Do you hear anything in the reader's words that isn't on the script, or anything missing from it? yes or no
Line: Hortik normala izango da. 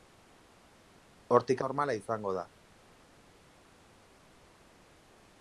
no